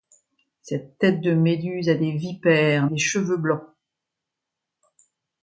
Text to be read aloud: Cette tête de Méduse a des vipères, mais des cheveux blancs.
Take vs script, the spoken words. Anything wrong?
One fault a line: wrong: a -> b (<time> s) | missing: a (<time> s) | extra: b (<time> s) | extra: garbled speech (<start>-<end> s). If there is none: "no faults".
missing: mais (2.9 s)